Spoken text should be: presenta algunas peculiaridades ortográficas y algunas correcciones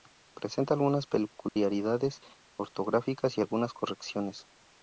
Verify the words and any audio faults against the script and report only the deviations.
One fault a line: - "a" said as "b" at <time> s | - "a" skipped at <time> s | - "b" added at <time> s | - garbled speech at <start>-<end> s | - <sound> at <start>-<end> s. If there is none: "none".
- dropout at 1.5-1.6 s